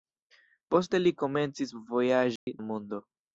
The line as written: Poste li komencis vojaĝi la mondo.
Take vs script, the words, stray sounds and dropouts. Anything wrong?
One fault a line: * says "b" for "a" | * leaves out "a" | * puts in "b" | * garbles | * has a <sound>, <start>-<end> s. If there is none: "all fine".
* has a dropout, 2.4-2.5 s